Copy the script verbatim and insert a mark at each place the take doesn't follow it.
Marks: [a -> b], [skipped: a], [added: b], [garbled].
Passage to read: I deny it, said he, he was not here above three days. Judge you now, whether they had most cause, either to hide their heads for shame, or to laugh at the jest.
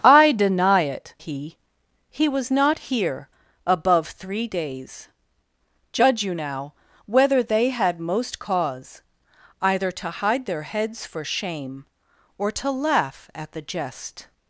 I deny it, [skipped: said] he, he was not here above three days. Judge you now, whether they had most cause, either to hide their heads for shame, or to laugh at the jest.